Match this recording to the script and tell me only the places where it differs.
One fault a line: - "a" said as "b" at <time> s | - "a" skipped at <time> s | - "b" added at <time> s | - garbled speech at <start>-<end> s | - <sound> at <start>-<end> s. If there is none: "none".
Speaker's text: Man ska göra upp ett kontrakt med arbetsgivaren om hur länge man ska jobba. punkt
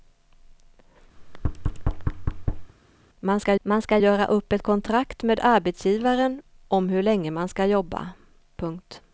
- thud at 1.2-2.7 s
- "man ska" added at 3.6 s